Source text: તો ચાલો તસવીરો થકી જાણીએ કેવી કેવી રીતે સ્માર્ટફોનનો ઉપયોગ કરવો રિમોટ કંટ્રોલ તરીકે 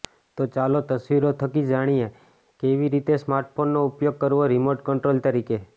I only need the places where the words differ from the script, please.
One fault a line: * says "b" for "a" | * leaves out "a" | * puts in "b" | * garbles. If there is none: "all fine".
* leaves out "કેવી"